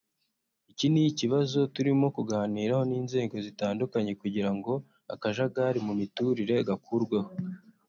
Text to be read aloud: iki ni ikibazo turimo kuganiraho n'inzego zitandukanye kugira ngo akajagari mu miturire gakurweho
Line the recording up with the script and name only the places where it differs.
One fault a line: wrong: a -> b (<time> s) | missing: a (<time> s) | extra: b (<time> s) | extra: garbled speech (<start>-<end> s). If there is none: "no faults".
no faults